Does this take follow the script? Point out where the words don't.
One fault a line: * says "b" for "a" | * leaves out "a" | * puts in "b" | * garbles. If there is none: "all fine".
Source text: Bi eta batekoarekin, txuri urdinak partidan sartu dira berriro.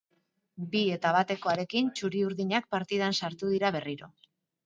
all fine